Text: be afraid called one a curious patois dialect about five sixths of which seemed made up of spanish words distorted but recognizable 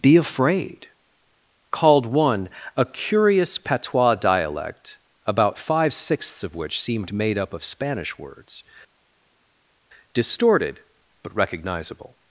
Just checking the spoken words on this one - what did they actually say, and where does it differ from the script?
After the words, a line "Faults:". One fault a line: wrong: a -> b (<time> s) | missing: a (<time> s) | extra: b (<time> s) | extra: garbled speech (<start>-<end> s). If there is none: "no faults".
be afraid called one a curious patois dialect about five sixths of which seemed made up of spanish words distorted but recognizable
Faults:
no faults